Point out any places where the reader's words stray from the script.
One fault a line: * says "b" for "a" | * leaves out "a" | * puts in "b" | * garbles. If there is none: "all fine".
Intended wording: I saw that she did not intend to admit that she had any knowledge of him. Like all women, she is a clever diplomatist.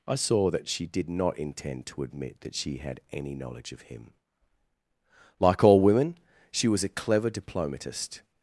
* says "was" for "is"